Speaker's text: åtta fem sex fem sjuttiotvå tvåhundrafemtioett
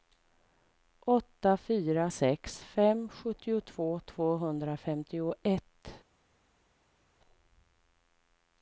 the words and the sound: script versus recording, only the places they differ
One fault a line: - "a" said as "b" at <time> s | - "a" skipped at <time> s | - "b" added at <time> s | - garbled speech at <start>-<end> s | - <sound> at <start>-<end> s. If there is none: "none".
- "fem" said as "fyra" at 1.6 s